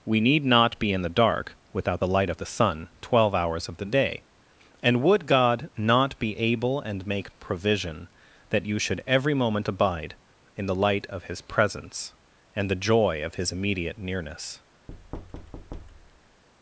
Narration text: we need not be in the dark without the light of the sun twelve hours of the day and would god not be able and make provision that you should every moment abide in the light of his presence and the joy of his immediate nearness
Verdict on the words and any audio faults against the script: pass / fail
fail